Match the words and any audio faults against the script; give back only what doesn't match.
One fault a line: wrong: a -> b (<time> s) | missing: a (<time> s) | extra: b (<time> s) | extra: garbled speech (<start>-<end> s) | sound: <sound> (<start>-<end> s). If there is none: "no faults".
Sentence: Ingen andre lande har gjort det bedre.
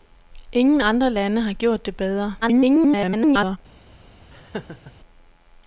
extra: garbled speech (2.4-3.6 s)
sound: laugh (4.3-4.9 s)